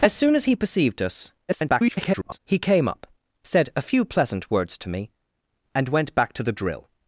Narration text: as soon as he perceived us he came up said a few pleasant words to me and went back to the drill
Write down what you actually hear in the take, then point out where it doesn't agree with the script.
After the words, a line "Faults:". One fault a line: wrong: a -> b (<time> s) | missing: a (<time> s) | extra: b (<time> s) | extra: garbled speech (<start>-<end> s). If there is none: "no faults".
as soon as he perceived us [garbled] he came up said a few pleasant words to me and went back to the drill
Faults:
extra: garbled speech (1.5-2.4 s)